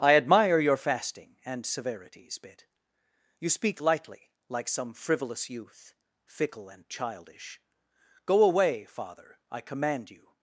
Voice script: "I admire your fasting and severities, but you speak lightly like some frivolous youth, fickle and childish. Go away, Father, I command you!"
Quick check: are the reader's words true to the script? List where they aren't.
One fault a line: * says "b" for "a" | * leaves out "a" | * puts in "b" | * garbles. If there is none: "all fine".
* says "bit" for "but"